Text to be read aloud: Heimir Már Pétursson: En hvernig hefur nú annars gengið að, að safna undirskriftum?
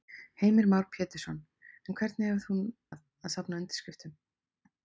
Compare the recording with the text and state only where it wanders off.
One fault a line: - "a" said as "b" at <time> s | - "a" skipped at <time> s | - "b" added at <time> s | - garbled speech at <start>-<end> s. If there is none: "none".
- "nú annars gengið" skipped at 2.6 s